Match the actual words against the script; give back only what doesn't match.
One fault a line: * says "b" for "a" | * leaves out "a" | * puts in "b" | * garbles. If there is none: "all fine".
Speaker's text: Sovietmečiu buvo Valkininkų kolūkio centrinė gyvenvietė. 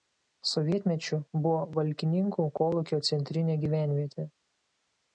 all fine